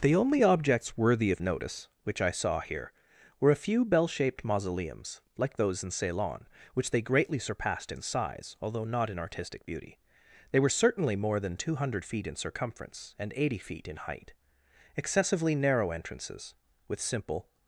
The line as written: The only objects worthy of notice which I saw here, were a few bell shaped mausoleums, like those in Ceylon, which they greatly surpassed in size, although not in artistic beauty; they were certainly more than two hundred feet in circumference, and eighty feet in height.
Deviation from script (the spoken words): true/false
true